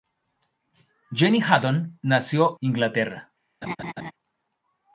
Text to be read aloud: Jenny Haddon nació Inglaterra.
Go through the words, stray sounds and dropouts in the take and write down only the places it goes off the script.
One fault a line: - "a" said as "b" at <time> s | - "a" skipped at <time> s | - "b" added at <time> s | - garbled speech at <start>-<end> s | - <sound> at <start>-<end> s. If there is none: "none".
- laugh at 3.6-4.1 s